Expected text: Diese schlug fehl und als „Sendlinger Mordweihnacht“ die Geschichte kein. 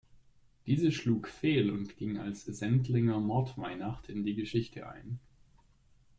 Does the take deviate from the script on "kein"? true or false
true